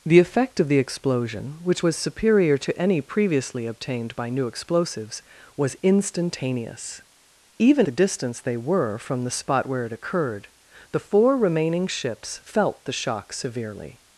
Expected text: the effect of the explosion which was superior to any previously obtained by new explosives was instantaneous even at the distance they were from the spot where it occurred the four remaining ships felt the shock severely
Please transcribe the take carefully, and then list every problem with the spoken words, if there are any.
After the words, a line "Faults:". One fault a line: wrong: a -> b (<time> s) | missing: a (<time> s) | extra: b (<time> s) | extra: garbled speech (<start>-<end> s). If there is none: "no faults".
the effect of the explosion which was superior to any previously obtained by new explosives was instantaneous even the distance they were from the spot where it occurred the four remaining ships felt the shock severely
Faults:
missing: at (7.8 s)